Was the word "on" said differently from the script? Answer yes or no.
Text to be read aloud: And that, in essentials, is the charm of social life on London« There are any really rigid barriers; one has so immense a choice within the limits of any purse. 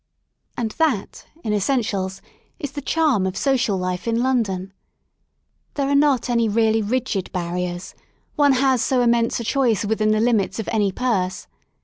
yes